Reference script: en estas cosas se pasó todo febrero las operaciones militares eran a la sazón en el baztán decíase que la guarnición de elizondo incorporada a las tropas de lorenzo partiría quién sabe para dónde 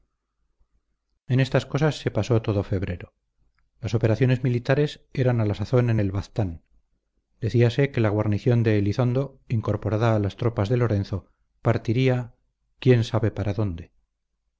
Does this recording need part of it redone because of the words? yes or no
no